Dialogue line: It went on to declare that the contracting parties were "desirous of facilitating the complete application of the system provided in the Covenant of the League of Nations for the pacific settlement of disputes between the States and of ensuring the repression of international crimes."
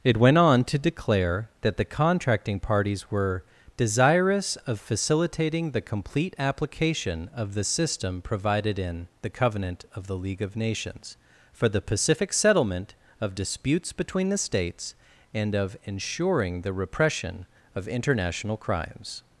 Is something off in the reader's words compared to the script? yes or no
no